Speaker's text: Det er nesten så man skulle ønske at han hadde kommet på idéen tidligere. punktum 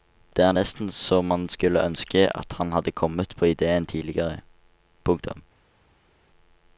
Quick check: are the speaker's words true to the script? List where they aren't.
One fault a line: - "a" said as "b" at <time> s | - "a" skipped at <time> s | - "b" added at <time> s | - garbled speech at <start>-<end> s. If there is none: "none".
none